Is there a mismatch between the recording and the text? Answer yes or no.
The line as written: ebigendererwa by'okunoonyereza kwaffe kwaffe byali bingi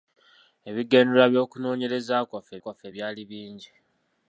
no